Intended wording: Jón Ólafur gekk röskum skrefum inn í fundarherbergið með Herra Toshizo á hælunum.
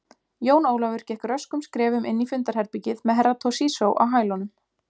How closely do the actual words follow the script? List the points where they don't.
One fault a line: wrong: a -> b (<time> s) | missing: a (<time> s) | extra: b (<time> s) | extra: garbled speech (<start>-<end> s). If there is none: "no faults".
no faults